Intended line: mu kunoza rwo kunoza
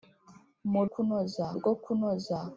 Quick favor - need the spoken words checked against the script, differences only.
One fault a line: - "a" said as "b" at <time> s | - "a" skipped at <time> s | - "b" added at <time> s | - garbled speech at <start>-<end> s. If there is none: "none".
none